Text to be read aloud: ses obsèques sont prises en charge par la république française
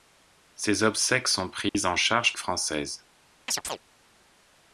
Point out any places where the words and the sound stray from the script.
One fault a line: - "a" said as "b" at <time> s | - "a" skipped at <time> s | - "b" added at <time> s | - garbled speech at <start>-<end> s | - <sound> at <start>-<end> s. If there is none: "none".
- dropout at 1.7-1.7 s
- "par la république" skipped at 2.3 s
- chirp at 3.5-3.8 s